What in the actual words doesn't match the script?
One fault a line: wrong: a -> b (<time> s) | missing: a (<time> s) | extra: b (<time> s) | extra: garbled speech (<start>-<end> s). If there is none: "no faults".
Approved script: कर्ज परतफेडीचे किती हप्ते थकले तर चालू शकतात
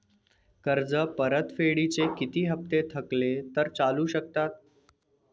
no faults